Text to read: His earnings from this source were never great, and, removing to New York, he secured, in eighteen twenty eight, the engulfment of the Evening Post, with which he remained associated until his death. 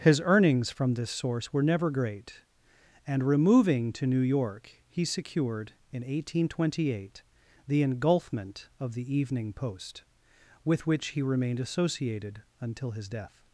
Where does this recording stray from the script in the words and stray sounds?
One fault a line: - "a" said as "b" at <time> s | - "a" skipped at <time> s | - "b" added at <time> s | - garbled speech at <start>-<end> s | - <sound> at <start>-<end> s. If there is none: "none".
none